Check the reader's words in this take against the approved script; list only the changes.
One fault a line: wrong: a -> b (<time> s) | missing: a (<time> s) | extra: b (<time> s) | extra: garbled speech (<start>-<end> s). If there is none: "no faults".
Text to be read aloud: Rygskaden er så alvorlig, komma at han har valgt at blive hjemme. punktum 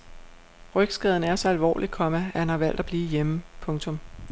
no faults